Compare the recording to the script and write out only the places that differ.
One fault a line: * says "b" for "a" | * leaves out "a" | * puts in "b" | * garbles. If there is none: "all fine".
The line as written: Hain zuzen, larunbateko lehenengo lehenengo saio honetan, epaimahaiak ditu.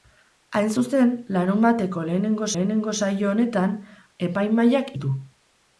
all fine